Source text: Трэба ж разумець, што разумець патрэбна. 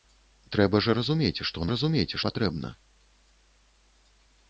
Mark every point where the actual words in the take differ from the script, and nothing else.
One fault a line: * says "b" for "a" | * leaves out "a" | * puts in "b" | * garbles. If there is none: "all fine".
all fine